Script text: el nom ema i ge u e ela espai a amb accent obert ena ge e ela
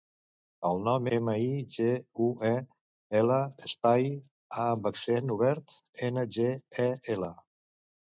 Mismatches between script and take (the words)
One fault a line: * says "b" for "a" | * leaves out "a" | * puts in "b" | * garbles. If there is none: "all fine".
all fine